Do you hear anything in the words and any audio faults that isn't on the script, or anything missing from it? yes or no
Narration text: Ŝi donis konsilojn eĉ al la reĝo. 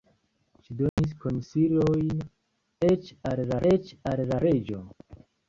yes